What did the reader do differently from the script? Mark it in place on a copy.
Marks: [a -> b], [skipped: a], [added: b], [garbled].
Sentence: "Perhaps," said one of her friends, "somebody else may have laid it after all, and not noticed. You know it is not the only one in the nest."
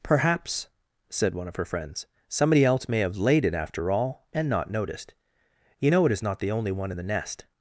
"Perhaps," said one of her friends, "somebody else may have laid it after all, and not noticed. You know it is not the only one in the nest."